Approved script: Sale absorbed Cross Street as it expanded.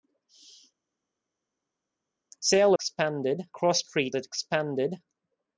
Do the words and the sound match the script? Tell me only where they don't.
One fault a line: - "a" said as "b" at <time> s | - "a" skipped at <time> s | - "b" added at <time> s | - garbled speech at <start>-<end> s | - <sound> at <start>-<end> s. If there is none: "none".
- "absorbed" said as "expanded" at 2.7 s
- "as" skipped at 4.1 s